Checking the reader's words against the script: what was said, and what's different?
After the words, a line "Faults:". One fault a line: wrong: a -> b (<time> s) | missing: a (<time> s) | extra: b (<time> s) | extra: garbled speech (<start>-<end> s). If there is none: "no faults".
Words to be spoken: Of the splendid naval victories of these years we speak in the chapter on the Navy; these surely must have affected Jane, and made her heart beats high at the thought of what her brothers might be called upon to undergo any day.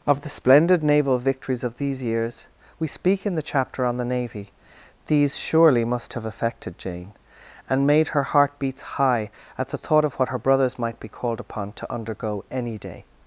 Of the splendid naval victories of these years we speak in the chapter on the Navy; these surely must have affected Jane, and made her heart beats high at the thought of what her brothers might be called upon to undergo any day.
Faults:
no faults